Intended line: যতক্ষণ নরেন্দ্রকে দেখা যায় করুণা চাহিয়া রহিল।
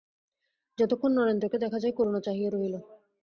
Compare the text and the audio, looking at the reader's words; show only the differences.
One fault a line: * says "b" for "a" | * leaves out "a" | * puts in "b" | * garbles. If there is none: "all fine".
all fine